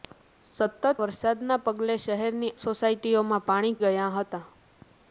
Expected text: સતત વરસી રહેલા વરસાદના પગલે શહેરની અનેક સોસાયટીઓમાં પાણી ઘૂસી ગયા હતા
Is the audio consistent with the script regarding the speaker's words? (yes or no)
no